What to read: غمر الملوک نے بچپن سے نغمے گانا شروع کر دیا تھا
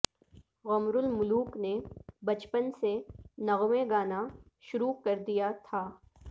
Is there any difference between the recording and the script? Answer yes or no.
no